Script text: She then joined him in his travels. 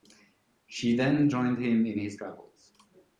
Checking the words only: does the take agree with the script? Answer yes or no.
yes